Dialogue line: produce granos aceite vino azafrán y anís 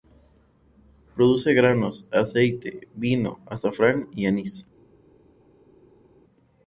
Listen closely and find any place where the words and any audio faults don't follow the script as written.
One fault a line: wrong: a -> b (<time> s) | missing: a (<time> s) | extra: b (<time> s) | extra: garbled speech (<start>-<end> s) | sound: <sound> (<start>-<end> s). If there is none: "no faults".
no faults